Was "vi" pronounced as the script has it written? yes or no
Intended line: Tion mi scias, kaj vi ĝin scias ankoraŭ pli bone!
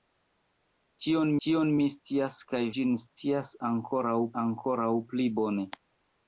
no